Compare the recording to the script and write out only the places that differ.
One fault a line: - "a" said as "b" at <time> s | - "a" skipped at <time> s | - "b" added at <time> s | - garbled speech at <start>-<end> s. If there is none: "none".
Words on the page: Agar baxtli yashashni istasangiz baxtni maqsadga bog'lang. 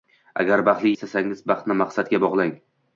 - "yashashni" skipped at 0.9 s